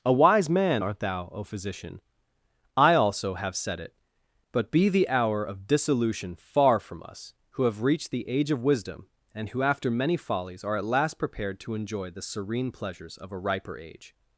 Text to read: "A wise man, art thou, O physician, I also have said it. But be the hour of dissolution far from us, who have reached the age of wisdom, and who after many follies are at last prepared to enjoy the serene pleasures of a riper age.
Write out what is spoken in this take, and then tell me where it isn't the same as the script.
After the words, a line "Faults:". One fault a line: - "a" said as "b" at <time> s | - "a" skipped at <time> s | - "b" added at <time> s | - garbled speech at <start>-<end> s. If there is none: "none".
"A wise man, art thou, O physician, I also have said it. But be the hour of dissolution far from us, who have reached the age of wisdom, and who after many follies are at last prepared to enjoy the serene pleasures of a riper age.
Faults:
none